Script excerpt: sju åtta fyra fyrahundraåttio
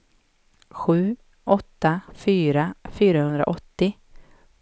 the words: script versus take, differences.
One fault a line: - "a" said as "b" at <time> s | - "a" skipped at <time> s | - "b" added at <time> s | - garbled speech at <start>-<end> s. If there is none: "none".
none